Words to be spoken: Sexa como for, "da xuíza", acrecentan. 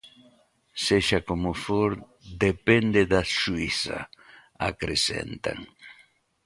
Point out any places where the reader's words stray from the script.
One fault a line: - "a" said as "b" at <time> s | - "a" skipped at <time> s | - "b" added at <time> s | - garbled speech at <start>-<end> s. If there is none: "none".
- "depende" added at 2.5 s